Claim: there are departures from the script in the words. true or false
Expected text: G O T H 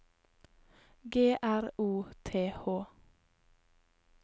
true